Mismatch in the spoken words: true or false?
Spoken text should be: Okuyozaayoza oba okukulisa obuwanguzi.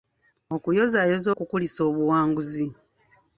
true